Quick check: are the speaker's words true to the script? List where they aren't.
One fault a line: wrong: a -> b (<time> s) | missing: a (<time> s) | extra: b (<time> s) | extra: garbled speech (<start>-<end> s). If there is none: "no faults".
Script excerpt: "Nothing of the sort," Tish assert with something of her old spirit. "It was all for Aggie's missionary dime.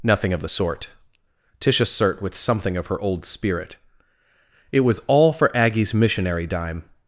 no faults